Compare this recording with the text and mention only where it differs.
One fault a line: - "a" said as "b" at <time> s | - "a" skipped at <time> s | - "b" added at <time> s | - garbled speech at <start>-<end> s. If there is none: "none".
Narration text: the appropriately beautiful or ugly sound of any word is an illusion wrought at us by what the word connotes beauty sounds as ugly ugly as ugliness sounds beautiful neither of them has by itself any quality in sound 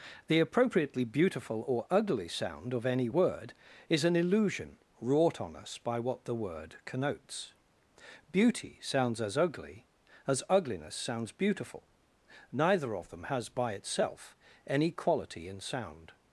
- "at" said as "on" at 5.4 s
- "ugly" skipped at 9.9 s